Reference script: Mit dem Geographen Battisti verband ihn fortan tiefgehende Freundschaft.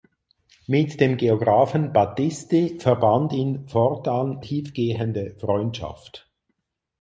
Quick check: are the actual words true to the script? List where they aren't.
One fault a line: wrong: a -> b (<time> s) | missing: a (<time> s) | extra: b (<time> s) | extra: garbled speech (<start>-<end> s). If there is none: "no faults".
no faults